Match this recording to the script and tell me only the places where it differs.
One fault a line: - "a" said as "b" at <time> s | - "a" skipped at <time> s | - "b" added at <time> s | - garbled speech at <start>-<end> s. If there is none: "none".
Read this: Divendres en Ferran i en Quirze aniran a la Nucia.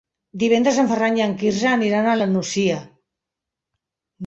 none